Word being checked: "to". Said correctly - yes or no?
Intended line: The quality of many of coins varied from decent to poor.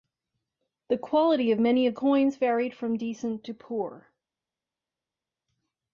yes